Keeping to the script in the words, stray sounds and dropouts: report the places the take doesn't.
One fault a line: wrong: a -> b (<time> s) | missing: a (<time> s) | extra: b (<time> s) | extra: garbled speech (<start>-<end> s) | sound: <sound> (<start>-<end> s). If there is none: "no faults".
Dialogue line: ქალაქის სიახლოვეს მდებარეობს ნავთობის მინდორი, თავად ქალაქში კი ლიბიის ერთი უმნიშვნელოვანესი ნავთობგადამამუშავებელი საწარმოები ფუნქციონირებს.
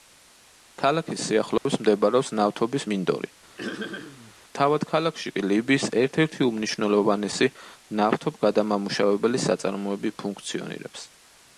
sound: dropout (1.6-1.7 s)
sound: throat clearing (3.6-4.3 s)
extra: ერთ (6.0 s)